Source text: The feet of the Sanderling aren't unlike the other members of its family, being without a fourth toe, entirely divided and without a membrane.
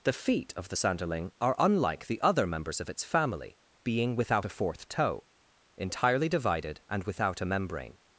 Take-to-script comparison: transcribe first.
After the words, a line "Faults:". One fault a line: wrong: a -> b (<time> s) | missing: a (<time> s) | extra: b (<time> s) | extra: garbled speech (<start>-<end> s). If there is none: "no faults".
The feet of the Sanderling are unlike the other members of its family, being without a fourth toe, entirely divided and without a membrane.
Faults:
wrong: aren't -> are (1.4 s)